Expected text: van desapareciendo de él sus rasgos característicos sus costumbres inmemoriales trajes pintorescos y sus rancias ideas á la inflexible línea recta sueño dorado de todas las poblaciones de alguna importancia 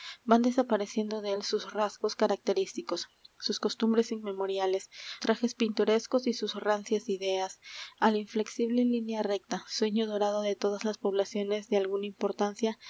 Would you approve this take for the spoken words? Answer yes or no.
yes